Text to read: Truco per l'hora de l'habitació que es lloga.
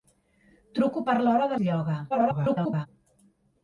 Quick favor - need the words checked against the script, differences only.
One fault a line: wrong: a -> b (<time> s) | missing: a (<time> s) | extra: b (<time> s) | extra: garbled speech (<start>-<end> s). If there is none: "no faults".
missing: l'habitació que (1.6 s)
extra: garbled speech (2.1-2.9 s)